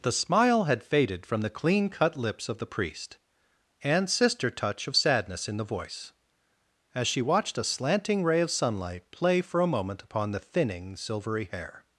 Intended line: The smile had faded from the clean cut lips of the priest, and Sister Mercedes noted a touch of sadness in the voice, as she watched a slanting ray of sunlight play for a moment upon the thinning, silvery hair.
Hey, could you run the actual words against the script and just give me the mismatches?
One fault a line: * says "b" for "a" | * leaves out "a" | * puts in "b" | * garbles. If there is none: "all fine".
* leaves out "Mercedes noted a"